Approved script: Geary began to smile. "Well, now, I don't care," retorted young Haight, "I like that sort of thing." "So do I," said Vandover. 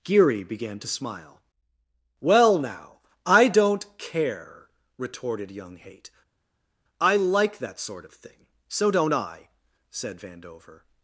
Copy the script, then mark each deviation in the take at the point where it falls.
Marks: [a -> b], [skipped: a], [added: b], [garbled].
Geary began to smile. "Well, now, I don't care," retorted young Haight, "I like that sort of thing." "So [do -> don't] I," said Vandover.